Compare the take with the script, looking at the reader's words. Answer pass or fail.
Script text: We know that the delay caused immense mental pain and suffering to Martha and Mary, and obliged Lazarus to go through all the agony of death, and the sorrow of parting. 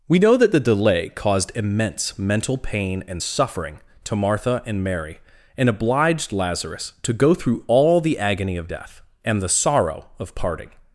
pass